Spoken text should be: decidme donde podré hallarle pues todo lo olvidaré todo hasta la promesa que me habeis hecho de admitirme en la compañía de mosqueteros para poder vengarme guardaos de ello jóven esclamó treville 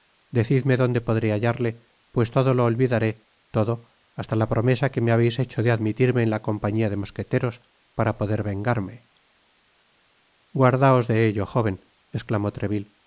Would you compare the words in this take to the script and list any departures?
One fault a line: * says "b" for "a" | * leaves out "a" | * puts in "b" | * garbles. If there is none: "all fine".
all fine